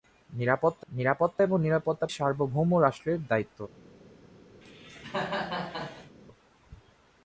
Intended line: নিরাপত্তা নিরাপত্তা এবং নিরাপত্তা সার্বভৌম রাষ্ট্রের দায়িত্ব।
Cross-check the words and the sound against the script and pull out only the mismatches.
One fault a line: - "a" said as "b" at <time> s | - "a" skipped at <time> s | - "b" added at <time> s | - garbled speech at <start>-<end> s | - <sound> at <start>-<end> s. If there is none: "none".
- cough at 4.6-6.2 s